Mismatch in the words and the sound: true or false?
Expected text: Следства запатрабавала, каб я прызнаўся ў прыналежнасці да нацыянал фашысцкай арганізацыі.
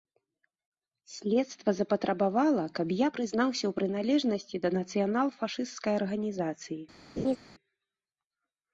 true